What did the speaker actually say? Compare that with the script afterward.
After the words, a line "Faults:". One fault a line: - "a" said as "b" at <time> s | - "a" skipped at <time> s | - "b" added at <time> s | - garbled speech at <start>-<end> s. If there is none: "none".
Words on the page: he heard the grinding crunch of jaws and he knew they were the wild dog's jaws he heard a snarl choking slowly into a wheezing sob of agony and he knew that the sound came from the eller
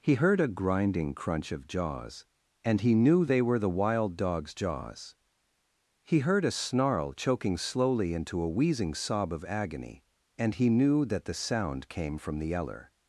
he heard a grinding crunch of jaws and he knew they were the wild dog's jaws he heard a snarl choking slowly into a wheezing sob of agony and he knew that the sound came from the eller
Faults:
- "the" said as "a" at 0.4 s